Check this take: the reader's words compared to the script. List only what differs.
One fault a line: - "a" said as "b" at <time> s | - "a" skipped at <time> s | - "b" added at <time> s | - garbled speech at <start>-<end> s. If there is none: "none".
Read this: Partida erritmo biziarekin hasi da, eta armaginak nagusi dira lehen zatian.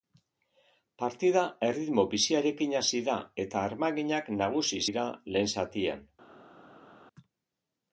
none